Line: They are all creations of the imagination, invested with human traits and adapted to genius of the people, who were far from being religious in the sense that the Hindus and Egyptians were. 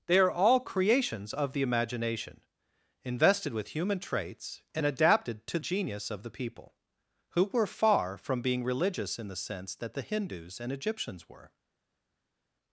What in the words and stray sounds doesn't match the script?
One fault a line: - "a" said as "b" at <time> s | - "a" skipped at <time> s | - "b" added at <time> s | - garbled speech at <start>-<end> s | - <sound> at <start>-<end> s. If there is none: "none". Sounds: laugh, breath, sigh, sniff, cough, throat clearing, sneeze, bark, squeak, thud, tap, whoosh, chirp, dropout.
none